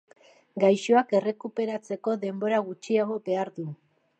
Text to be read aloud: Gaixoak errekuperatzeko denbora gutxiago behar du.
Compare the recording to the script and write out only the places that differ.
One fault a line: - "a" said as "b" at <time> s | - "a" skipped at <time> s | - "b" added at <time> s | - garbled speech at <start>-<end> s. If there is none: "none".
none